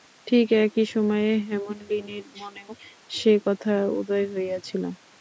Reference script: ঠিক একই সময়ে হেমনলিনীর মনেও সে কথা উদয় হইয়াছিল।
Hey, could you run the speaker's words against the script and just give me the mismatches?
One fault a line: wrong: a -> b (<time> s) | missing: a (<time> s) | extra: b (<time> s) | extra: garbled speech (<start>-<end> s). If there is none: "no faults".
no faults